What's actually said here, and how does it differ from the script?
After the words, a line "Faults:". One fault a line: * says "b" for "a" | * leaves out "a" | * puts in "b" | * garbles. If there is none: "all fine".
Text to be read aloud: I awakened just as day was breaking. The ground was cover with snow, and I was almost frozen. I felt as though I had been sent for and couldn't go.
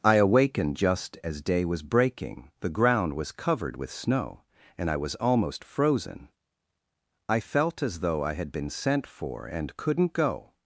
I awakened just as day was breaking. The ground was covered with snow, and I was almost frozen. I felt as though I had been sent for and couldn't go.
Faults:
* says "covered" for "cover"